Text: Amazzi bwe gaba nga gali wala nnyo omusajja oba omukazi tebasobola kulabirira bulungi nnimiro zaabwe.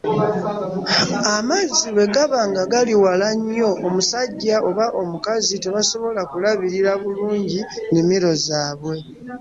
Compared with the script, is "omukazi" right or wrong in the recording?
right